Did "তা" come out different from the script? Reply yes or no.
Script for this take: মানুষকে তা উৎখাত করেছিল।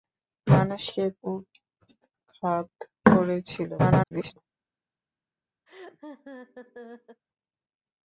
yes